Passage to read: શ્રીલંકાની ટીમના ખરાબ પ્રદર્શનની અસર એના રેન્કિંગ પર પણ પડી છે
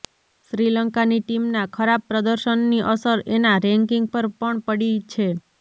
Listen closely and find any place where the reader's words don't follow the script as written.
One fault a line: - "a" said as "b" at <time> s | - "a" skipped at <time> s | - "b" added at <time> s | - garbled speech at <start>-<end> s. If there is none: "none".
none